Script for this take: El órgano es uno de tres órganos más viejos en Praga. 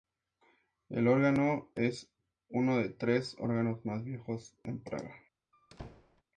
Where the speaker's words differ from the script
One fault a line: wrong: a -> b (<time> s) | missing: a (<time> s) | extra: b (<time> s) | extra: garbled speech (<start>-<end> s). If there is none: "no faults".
no faults